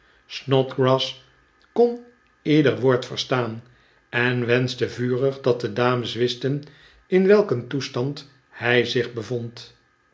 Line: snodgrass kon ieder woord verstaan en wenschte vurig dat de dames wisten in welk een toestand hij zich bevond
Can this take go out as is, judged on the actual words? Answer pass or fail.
pass